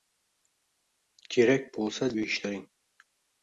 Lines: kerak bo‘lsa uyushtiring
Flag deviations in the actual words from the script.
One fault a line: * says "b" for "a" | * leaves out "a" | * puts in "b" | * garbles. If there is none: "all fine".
all fine